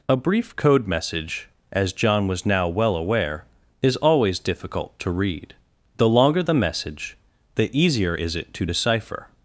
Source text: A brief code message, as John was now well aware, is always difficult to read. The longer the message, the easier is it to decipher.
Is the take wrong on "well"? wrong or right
right